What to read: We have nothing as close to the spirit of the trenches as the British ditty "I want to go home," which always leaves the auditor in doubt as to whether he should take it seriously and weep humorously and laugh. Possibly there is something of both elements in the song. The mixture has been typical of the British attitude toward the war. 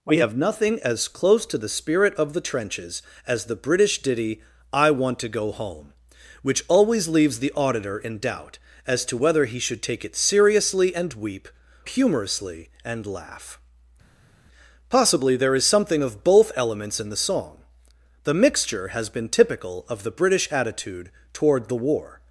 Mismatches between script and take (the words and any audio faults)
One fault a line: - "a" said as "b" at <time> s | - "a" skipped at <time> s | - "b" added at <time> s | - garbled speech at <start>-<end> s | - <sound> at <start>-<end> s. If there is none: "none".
none